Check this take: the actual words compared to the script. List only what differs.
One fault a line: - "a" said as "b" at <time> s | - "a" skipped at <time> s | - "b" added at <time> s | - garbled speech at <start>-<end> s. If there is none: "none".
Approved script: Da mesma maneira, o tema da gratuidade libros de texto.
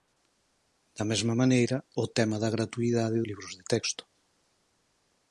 none